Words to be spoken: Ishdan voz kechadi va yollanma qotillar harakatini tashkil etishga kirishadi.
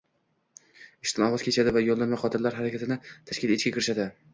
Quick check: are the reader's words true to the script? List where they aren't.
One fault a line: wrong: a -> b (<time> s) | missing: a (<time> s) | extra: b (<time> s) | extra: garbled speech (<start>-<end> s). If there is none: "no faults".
no faults